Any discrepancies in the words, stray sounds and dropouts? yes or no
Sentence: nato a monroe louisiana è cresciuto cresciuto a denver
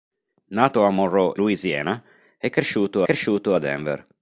no